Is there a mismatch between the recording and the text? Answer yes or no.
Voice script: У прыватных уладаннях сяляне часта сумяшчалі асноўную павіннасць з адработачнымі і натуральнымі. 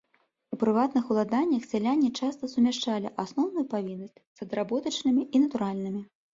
no